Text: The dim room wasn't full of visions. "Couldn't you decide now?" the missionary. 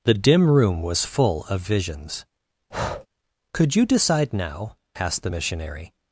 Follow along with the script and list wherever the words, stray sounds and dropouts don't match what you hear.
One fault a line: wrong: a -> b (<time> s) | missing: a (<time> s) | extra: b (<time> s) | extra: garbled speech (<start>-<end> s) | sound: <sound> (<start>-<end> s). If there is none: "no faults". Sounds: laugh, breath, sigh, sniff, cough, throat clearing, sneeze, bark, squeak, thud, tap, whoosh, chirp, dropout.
wrong: wasn't -> was (0.8 s)
sound: breath (2.7-3.1 s)
wrong: Couldn't -> Could (3.5 s)
extra: asked (4.9 s)